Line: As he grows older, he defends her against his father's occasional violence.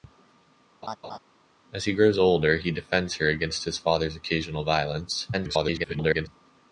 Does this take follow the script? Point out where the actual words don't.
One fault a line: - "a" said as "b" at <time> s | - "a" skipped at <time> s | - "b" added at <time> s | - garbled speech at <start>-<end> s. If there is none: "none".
- garbled speech at 5.3-6.3 s